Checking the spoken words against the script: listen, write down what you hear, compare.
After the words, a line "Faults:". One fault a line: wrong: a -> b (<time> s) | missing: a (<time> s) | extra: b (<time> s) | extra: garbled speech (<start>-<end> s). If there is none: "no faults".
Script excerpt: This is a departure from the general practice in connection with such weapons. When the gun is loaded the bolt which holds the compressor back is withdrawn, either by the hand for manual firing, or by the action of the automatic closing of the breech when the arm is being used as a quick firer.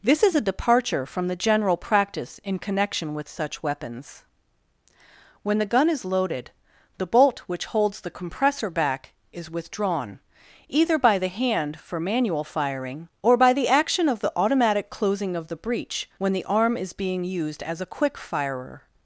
This is a departure from the general practice in connection with such weapons. When the gun is loaded the bolt which holds the compressor back is withdrawn, either by the hand for manual firing, or by the action of the automatic closing of the breech when the arm is being used as a quick firer.
Faults:
no faults